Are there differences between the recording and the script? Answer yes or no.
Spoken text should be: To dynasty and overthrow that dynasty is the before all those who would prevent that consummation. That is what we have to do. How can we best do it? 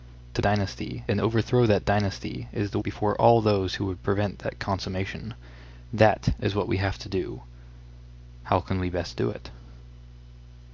no